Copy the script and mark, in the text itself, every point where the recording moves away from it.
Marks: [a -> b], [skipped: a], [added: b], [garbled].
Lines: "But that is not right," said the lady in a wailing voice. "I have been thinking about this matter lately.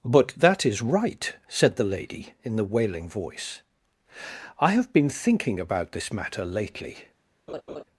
"But that is [skipped: not] right," said the lady in [a -> the] wailing voice. "I have been thinking about this matter lately.